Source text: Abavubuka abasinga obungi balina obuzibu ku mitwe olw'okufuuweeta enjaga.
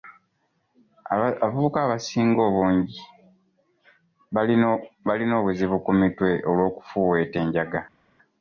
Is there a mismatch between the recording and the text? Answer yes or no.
no